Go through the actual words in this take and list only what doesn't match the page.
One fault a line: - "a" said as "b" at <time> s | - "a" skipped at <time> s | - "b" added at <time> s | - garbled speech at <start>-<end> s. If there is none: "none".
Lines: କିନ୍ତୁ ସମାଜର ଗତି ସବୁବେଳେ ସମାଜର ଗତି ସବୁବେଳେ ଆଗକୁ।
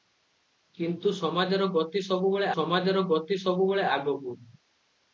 none